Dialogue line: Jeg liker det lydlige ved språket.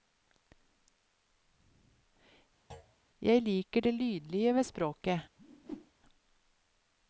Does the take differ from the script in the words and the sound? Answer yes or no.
yes